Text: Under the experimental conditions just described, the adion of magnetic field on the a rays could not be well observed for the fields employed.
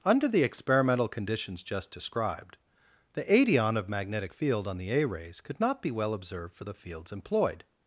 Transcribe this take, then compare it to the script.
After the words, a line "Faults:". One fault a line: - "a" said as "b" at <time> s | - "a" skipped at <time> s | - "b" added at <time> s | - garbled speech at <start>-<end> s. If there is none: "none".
Under the experimental conditions just described, the adion of magnetic field on the a rays could not be well observed for the fields employed.
Faults:
none